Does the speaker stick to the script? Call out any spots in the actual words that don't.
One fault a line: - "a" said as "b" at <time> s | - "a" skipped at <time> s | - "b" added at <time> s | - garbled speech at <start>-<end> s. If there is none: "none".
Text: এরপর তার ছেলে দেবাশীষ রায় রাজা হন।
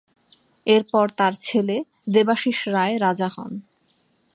none